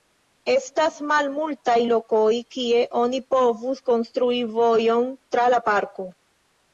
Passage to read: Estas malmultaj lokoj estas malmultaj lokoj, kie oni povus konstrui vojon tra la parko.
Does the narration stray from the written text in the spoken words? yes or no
yes